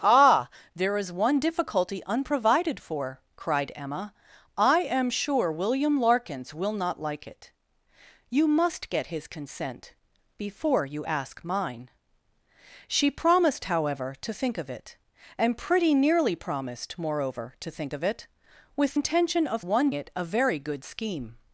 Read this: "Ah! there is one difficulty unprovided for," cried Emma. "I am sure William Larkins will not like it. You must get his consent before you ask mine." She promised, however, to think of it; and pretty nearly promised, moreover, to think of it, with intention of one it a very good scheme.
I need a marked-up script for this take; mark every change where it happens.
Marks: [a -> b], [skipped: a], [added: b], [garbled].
"Ah! there is one difficulty unprovided for," cried Emma. "I am sure William Larkins will not like it. You must get his consent before you ask mine." She promised, however, to think of it; and pretty nearly promised, moreover, to think of it, with intention of one it a very good scheme.